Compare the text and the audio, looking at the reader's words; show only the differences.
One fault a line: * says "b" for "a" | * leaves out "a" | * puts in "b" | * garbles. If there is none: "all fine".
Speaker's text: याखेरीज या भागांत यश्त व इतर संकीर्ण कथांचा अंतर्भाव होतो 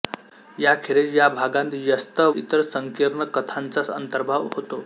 * leaves out "व"